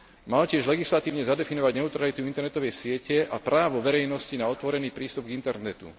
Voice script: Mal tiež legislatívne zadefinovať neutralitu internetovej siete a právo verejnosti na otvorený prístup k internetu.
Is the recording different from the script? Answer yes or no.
no